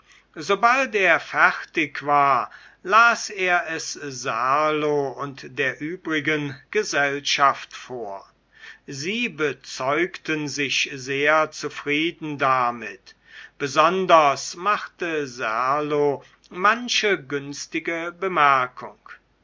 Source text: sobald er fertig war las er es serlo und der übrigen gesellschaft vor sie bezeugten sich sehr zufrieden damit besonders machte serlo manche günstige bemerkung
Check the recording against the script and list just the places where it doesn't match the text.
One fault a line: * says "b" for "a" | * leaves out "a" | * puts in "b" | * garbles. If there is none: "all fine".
all fine